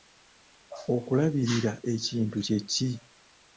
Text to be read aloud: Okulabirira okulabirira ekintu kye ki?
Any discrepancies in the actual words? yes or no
yes